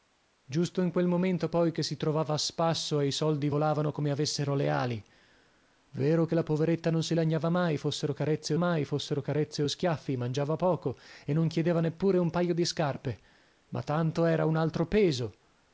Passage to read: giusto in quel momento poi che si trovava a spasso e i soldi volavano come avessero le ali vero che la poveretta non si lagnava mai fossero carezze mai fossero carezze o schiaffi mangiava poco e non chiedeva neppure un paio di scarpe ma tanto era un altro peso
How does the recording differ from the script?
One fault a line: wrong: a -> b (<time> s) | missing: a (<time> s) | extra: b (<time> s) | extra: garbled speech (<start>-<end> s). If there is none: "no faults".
no faults